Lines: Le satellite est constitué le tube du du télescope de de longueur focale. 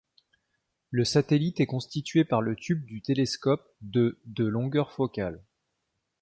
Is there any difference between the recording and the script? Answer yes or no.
yes